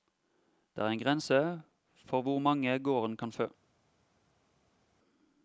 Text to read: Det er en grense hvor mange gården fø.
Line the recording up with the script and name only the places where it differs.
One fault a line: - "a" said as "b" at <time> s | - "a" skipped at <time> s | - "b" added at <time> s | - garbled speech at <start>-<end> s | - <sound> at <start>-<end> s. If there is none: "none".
- "for" added at 1.9 s
- "kan" added at 3.2 s